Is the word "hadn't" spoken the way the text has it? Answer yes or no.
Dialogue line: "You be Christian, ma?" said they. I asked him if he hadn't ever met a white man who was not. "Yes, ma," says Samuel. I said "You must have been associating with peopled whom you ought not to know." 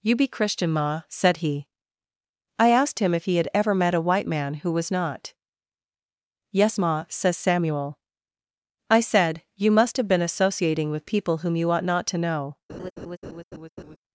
no